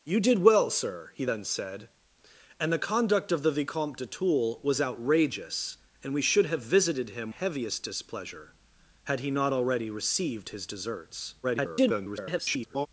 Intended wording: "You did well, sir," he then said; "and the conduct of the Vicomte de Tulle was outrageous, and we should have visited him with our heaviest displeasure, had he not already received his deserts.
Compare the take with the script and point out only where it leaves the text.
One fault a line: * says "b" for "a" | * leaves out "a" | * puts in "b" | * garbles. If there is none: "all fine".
* leaves out "with our"
* garbles